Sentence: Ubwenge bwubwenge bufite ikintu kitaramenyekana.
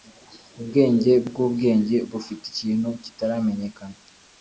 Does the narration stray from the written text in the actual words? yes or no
no